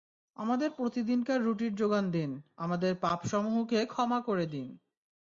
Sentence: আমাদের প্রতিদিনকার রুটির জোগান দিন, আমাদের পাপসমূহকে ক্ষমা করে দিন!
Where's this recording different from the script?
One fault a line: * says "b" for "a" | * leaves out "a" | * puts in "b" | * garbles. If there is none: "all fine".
all fine